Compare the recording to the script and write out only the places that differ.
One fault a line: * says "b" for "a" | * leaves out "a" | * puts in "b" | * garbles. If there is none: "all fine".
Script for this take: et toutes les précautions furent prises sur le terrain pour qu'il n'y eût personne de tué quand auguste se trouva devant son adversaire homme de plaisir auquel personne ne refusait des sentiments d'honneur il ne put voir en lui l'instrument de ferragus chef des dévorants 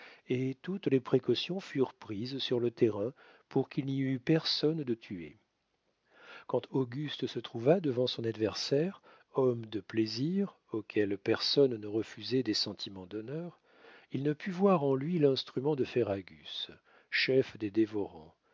all fine